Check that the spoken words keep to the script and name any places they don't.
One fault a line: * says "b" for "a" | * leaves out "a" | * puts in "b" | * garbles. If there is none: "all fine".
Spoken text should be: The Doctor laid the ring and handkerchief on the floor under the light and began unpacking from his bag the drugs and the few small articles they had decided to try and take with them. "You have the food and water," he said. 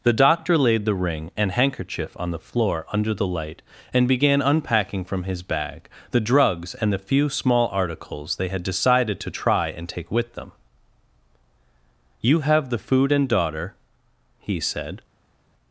* says "daughter" for "water"